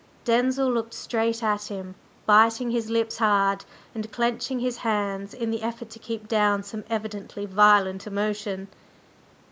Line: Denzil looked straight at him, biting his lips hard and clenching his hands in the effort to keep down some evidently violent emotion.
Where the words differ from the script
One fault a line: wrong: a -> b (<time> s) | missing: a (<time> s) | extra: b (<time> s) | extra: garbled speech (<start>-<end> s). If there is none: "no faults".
no faults